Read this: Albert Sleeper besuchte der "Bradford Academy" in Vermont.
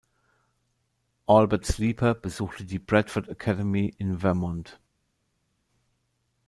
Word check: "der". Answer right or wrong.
wrong